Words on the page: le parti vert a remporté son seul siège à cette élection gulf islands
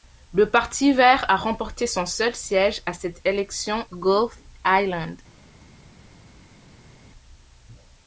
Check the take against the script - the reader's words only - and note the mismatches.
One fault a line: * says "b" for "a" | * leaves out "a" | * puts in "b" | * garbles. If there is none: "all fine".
all fine